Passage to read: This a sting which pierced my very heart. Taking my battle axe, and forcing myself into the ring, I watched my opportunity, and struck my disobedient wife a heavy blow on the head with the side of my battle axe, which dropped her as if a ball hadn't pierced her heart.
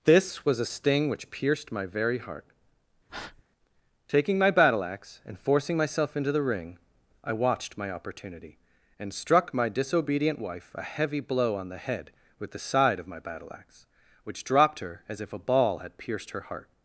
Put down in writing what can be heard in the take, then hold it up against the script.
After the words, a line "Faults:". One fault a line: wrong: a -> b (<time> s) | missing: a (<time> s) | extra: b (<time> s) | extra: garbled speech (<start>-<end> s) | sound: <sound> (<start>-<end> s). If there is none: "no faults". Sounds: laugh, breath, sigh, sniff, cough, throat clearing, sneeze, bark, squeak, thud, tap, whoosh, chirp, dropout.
This was a sting which pierced my very heart. Taking my battle axe, and forcing myself into the ring, I watched my opportunity, and struck my disobedient wife a heavy blow on the head with the side of my battle axe, which dropped her as if a ball had pierced her heart.
Faults:
extra: was (0.4 s)
sound: breath (3.1-3.4 s)
wrong: hadn't -> had (15.8 s)